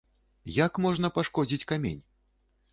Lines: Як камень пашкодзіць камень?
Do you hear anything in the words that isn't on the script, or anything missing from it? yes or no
yes